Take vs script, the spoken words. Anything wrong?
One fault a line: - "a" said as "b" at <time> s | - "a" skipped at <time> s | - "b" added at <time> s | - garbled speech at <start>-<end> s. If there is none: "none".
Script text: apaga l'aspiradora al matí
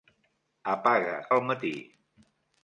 - "l'aspiradora" skipped at 1.1 s